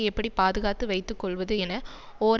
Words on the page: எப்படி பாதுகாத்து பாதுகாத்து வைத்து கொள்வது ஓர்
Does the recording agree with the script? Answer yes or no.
no